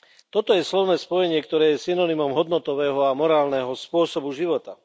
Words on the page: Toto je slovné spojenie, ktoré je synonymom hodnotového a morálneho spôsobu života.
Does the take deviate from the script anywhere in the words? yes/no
no